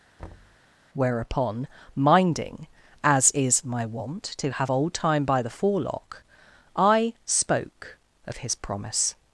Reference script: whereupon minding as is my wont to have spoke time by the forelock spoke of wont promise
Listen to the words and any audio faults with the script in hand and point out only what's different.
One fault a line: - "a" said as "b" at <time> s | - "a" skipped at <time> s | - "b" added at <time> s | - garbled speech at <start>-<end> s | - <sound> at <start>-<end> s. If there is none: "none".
- thud at 0.2-0.6 s
- "spoke" said as "old" at 4.7 s
- "i" added at 6.8 s
- "wont" said as "his" at 8.4 s